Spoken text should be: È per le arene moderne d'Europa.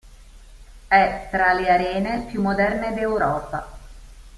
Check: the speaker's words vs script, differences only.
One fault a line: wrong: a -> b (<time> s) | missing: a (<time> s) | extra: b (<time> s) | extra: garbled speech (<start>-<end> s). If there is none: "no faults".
wrong: per -> tra (1.3 s)
extra: più (2.3 s)